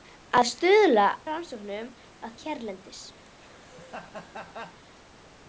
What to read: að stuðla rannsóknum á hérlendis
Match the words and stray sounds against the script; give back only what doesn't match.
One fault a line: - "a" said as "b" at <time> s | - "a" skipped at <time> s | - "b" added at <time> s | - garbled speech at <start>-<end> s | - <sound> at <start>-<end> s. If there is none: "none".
- laugh at 3.2-4.8 s